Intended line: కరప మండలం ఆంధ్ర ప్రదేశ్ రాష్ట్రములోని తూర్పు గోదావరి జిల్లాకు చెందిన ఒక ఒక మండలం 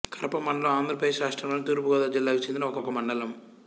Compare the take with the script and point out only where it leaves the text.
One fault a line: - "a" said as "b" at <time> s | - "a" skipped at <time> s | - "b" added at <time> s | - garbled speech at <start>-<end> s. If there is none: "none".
none